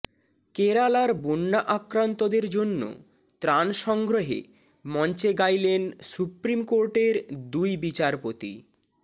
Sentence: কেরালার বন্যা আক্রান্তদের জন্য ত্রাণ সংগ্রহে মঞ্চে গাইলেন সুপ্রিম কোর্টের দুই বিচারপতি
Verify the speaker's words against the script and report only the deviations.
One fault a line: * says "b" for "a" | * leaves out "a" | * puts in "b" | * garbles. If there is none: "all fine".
all fine